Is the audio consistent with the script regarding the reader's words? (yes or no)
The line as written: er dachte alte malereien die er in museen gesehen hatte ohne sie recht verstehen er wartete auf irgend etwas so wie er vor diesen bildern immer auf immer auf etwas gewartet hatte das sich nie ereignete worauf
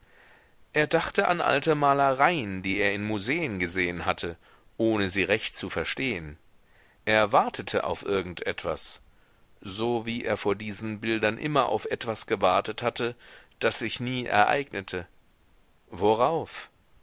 no